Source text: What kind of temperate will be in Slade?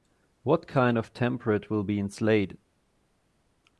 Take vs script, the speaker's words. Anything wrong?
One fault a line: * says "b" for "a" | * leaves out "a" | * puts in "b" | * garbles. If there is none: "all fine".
all fine